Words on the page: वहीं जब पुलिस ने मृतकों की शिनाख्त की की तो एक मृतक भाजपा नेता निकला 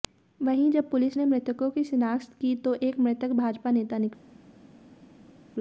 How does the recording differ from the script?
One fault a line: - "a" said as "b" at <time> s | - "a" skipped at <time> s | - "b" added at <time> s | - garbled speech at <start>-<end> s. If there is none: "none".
- "की" skipped at 2.5 s